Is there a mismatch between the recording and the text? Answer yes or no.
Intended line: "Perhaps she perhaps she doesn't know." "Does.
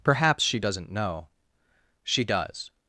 yes